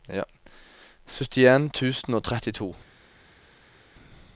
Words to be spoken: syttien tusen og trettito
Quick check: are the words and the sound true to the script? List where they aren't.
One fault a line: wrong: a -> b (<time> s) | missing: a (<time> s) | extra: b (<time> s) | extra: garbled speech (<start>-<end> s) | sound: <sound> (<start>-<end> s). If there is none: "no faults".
no faults